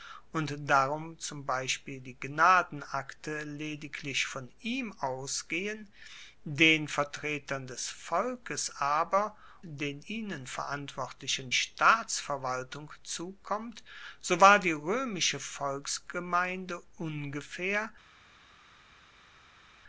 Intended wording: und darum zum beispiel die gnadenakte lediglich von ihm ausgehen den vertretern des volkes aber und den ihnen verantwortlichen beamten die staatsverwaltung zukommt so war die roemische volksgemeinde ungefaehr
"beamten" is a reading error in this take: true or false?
true